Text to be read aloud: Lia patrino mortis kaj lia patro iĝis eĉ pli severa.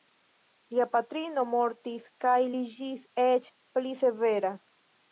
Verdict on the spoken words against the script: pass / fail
fail